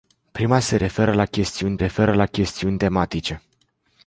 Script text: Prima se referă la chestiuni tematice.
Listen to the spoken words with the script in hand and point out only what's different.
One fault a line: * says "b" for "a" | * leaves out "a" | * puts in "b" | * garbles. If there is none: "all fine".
* puts in "referă la chestiuni"